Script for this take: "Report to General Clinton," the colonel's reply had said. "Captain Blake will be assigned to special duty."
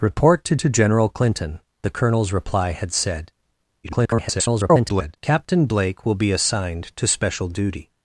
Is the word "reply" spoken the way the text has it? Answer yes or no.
yes